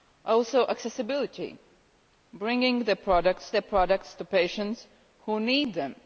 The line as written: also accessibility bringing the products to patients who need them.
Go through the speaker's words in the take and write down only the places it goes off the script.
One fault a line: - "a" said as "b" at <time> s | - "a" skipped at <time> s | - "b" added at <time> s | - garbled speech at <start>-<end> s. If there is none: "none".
- "the products" added at 3.5 s